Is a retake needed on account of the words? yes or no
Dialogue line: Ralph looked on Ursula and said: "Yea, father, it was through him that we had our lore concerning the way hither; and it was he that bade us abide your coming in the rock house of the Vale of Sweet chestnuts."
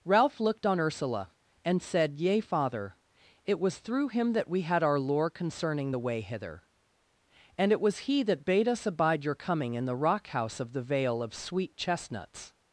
no